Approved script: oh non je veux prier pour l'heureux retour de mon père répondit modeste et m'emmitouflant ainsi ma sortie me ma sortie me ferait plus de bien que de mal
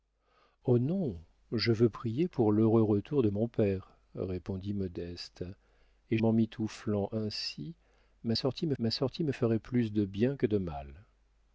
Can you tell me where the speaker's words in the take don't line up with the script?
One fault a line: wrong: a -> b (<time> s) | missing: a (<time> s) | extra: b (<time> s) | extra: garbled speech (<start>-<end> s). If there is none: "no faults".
no faults